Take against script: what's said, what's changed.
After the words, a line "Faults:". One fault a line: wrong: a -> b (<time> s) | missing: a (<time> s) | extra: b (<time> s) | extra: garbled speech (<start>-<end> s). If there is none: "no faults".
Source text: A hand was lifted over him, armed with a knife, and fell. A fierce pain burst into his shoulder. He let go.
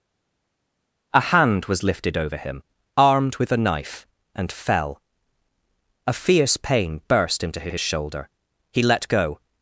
A hand was lifted over him, armed with a knife, and fell. A fierce pain burst into his his shoulder. He let go.
Faults:
extra: his (7.7 s)